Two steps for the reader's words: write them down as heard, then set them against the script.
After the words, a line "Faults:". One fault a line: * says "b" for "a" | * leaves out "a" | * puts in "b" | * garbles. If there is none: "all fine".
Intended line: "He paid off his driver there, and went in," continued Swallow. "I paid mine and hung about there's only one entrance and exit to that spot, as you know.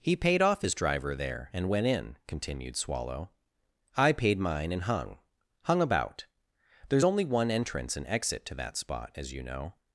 "He paid off his driver there, and went in," continued Swallow. "I paid mine and hung hung about there's only one entrance and exit to that spot, as you know.
Faults:
* puts in "hung"